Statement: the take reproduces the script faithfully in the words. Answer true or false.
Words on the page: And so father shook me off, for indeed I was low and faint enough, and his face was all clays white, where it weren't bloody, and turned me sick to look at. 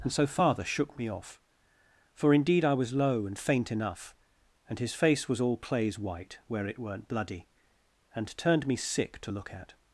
true